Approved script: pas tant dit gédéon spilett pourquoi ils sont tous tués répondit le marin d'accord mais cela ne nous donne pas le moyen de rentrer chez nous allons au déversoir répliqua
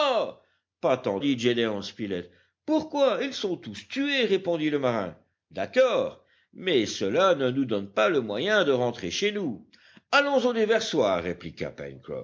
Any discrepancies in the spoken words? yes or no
no